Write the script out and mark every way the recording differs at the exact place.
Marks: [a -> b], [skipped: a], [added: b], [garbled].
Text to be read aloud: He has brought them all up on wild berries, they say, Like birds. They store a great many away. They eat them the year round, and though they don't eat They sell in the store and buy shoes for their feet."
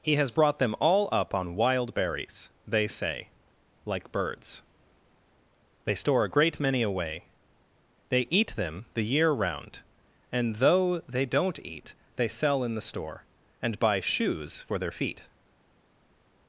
He has brought them all up on wild berries, they say, Like birds. They store a great many away. They eat them the year round, and though they don't eat They sell in the store and buy shoes for their feet."